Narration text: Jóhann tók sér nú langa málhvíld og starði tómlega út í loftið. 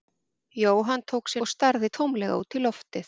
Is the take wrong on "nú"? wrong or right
wrong